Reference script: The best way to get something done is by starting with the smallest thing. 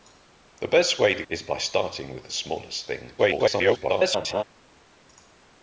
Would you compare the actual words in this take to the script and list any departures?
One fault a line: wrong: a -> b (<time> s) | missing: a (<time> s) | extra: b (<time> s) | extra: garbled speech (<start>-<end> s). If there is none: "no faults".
missing: get something done (1.2 s)
extra: garbled speech (3.2-4.4 s)